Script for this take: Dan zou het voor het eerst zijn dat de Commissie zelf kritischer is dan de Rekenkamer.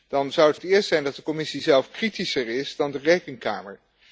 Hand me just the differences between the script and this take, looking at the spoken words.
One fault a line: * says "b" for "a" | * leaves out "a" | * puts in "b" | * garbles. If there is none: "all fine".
* leaves out "voor"